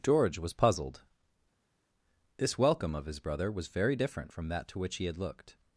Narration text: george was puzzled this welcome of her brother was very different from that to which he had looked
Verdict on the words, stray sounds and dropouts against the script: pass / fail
fail